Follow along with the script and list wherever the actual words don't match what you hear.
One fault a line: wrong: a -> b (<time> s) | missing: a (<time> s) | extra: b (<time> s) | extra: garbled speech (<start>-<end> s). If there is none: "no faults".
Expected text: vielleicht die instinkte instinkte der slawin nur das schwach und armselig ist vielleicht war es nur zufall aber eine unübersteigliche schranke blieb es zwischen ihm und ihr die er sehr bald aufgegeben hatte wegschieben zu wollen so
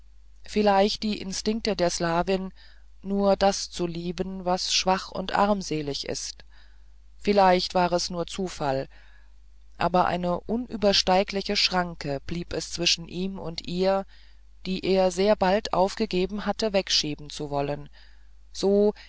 missing: instinkte (1.8 s)
extra: zu lieben was (3.7 s)